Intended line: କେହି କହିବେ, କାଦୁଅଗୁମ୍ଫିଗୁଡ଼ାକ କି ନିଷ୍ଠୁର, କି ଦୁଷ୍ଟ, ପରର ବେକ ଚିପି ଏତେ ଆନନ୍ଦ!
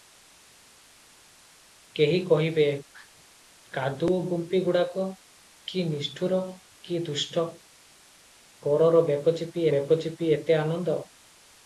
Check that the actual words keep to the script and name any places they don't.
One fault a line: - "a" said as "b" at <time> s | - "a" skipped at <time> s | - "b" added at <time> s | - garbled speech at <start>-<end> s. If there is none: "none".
- "ବେକ ଚିପି" added at 9.7 s